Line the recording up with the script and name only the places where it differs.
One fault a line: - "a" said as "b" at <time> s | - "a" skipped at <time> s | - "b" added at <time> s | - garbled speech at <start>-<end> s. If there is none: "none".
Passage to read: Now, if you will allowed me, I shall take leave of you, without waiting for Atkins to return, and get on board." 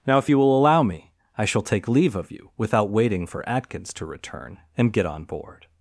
- "allowed" said as "allow" at 0.6 s